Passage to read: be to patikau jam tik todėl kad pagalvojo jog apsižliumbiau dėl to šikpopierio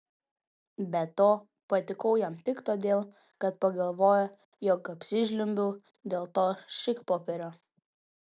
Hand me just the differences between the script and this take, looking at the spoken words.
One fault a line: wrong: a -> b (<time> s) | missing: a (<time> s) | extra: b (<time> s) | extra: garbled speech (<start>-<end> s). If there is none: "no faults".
no faults